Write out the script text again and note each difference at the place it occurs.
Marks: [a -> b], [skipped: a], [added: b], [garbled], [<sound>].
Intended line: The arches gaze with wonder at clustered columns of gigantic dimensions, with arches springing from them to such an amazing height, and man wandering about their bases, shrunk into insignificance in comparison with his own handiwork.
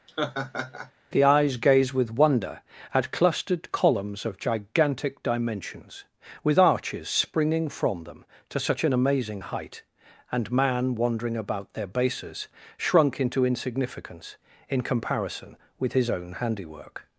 [laugh] The [arches -> eyes] gaze with wonder at clustered columns of gigantic dimensions, with arches springing from them to such an amazing height, and man wandering about their bases, shrunk into insignificance in comparison with his own handiwork.